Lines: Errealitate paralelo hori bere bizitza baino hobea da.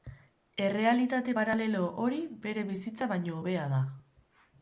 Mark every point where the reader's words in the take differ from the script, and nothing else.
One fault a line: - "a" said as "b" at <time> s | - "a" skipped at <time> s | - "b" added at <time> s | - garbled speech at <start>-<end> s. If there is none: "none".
none